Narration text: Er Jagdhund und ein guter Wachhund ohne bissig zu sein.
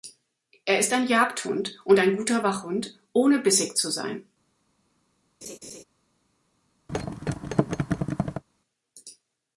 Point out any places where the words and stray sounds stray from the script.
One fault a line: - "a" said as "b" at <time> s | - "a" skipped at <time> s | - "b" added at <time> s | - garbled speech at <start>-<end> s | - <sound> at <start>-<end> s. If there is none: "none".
- "ist ein" added at 0.8 s
- laugh at 5.4-5.8 s
- thud at 6.9-8.4 s